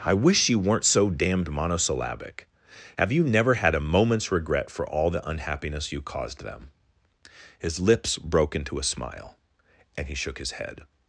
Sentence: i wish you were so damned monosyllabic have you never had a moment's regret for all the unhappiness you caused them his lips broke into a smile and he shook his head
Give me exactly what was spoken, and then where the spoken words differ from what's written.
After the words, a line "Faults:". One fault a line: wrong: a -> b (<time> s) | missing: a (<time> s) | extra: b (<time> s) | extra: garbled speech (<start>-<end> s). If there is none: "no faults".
i wish you weren't so damned monosyllabic have you never had a moment's regret for all the unhappiness you caused them his lips broke into a smile and he shook his head
Faults:
wrong: were -> weren't (0.6 s)